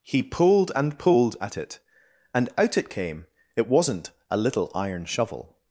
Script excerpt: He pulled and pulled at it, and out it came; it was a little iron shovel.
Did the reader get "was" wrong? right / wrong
wrong